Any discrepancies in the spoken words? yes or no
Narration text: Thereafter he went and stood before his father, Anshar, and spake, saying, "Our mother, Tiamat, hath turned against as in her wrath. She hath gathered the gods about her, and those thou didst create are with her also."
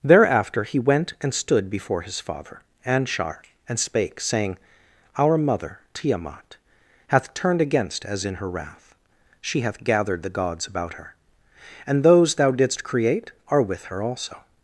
no